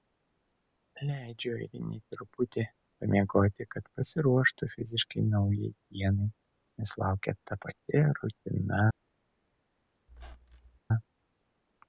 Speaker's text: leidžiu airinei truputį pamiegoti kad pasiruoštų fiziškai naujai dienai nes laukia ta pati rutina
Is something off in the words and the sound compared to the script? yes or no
yes